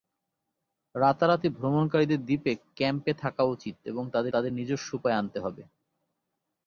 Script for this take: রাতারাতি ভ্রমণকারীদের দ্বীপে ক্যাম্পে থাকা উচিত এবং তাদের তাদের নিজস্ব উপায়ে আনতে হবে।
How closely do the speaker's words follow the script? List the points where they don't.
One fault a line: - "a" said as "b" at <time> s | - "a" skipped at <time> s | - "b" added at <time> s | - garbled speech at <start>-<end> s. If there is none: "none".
none